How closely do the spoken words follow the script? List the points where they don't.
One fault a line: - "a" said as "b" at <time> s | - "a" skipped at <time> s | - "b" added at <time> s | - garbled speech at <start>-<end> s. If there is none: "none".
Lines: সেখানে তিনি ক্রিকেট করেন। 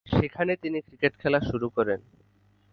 - "খেলা শুরু" added at 1.2 s